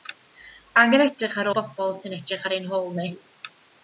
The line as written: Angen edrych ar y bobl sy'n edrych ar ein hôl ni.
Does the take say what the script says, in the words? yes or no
yes